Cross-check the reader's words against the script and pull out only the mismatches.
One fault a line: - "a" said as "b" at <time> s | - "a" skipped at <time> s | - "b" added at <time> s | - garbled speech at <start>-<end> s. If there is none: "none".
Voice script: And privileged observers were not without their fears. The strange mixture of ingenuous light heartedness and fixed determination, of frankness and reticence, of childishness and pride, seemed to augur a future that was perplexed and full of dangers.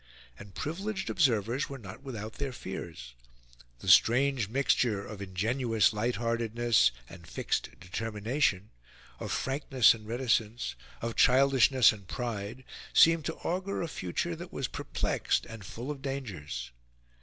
none